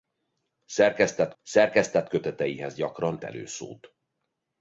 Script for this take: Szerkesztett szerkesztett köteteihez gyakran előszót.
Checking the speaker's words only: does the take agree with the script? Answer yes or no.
yes